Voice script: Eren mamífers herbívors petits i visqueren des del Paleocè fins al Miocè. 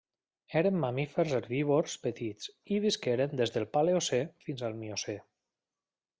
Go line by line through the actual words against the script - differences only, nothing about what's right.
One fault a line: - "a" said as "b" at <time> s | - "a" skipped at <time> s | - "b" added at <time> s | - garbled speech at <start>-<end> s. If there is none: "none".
none